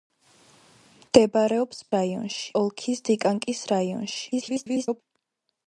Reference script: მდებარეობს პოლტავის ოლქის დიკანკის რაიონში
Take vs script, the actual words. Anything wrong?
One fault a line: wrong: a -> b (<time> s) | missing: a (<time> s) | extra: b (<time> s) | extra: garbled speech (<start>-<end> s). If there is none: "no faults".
wrong: პოლტავის -> რაიონში (2.0 s)
extra: garbled speech (4.3-5.0 s)